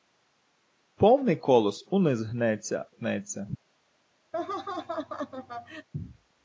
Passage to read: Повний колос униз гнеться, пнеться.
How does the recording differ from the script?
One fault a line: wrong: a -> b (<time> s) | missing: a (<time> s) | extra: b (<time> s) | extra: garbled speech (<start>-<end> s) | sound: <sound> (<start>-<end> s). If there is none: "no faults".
sound: laugh (4.3-5.9 s)